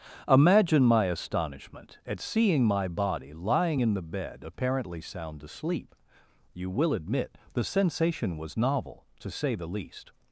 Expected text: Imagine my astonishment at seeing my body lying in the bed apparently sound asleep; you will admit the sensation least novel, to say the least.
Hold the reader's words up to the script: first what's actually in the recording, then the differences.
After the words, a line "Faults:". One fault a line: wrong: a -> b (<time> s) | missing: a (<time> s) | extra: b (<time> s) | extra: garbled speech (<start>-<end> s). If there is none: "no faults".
Imagine my astonishment at seeing my body lying in the bed apparently sound asleep; you will admit the sensation was novel, to say the least.
Faults:
wrong: least -> was (8.4 s)